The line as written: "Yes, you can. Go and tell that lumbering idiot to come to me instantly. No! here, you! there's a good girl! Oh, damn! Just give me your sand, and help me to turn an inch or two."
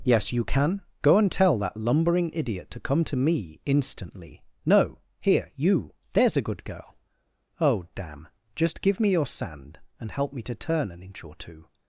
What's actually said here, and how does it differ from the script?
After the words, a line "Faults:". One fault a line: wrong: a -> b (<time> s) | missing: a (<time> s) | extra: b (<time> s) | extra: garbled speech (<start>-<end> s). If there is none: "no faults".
"Yes, you can. Go and tell that lumbering idiot to come to me instantly. No! here, you! there's a good girl! Oh, damn! Just give me your sand, and help me to turn an inch or two."
Faults:
no faults